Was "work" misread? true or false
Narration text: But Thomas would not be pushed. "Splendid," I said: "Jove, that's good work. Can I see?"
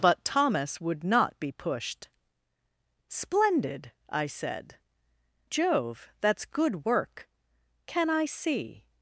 false